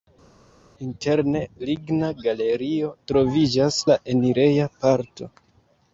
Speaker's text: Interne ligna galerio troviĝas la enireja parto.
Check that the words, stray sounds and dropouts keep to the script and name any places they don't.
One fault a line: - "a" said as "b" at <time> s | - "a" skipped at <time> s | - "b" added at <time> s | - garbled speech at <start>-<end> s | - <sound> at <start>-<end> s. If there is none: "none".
none